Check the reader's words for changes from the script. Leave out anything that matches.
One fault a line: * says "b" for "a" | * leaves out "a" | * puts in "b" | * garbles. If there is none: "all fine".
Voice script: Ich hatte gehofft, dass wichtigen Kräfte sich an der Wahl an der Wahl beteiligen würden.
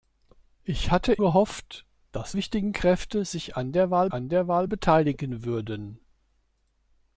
all fine